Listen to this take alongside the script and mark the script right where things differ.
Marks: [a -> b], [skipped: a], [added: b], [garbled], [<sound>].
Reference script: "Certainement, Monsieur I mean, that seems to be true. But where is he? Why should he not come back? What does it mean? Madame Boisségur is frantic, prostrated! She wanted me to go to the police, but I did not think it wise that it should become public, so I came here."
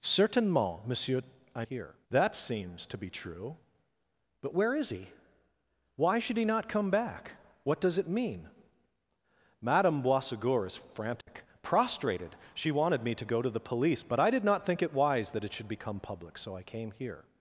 "Certainement, Monsieur I [mean, -> here] that seems to be true. But where is he? Why should he not come back? What does it mean? Madame Boisségur is frantic, [dropout] prostrated! She wanted me to go to the police, but I did not think it wise that it should become public, so I came here."